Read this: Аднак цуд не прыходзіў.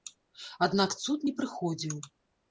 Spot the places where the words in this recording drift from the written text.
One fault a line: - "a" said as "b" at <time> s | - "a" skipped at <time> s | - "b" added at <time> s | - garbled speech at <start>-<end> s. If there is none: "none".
none